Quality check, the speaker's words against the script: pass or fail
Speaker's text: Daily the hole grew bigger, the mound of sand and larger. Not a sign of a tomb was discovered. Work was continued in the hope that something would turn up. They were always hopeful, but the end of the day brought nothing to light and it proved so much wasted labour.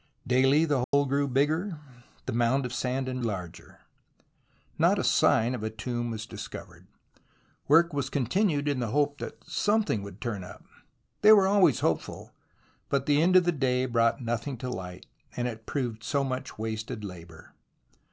pass